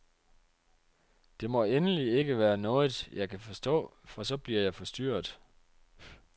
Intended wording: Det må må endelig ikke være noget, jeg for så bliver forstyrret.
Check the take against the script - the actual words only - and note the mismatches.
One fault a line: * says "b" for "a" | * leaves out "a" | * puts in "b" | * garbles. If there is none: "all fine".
* leaves out "må"
* puts in "kan forstå"
* puts in "jeg"